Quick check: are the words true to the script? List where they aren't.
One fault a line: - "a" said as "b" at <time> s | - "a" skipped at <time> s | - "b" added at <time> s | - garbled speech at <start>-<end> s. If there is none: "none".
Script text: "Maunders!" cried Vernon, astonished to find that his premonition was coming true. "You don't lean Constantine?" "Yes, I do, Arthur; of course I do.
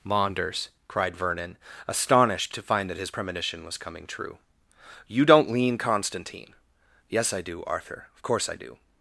none